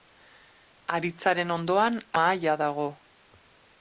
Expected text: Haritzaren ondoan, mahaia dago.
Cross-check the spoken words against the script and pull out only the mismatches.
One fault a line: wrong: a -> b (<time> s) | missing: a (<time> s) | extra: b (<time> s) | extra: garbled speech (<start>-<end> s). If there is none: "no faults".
no faults